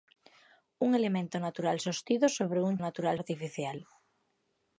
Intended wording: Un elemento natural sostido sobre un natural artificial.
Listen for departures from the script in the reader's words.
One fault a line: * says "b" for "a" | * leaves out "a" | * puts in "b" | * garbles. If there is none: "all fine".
all fine